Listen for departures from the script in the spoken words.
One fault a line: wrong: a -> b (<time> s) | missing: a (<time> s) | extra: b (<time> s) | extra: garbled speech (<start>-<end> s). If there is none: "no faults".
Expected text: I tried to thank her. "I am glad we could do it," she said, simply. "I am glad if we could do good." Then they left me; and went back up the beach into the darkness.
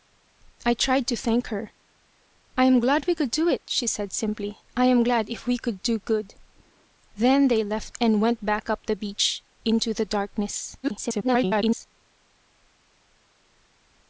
missing: me (7.9 s)
extra: garbled speech (10.8-11.9 s)